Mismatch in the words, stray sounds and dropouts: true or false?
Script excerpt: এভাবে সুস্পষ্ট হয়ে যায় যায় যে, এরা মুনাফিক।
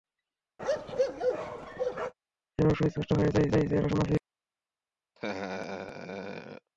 true